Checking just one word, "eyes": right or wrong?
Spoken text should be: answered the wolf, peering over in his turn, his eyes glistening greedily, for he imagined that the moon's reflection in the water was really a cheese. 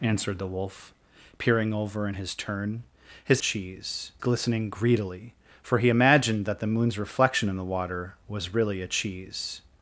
wrong